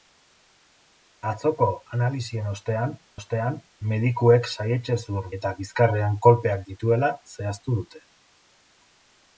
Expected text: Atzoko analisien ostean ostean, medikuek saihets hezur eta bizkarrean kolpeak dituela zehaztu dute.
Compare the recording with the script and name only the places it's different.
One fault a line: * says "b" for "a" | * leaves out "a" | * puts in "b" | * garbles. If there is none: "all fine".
all fine